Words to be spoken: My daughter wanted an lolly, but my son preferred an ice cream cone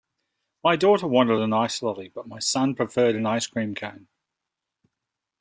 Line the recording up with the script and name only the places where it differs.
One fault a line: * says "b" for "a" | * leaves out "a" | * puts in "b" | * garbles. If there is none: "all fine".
* puts in "ice"